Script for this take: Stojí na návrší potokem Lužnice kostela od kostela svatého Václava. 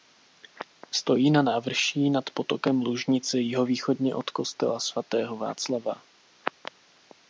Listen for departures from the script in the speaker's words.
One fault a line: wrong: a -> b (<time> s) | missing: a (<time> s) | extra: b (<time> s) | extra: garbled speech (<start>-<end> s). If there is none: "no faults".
extra: nad (2.1 s)
wrong: kostela -> jihovýchodně (3.4 s)